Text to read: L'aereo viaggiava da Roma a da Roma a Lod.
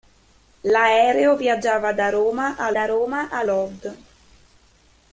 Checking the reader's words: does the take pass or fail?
pass